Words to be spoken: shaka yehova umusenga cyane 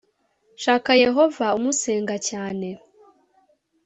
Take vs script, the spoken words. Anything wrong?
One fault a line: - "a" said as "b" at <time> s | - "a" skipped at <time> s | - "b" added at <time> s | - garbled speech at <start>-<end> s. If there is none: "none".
none